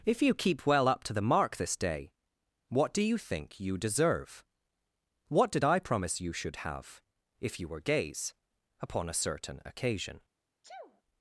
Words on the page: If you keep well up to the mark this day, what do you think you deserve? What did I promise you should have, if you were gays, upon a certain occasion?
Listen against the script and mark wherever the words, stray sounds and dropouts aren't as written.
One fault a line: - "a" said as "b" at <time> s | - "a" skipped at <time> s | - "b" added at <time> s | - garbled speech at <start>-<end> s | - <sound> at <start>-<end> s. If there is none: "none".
- sneeze at 10.6-11.0 s